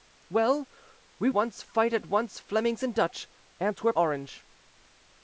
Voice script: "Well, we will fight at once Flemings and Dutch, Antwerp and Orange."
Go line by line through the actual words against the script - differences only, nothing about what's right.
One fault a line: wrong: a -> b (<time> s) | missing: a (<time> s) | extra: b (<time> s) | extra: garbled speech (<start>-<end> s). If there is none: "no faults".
wrong: will -> once (1.3 s)
missing: and (4.0 s)